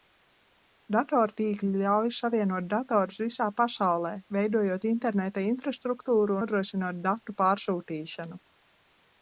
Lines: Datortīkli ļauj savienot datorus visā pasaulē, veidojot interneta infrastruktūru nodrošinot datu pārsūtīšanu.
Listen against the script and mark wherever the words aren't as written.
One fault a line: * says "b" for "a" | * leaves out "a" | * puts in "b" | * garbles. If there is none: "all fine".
all fine